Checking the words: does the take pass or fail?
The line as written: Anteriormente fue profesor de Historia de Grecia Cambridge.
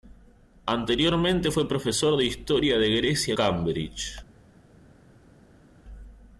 pass